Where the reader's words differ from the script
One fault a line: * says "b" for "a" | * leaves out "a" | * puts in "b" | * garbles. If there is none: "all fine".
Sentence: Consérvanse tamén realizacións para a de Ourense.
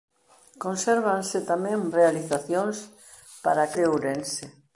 all fine